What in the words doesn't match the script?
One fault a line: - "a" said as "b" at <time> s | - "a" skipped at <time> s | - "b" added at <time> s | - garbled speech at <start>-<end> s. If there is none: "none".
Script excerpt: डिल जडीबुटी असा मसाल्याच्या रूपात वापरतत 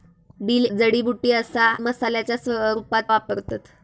none